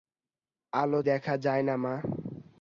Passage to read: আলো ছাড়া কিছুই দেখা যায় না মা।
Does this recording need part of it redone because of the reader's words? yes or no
yes